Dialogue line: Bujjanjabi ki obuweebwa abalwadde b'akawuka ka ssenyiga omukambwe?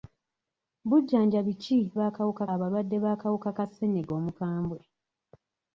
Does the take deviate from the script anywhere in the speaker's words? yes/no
yes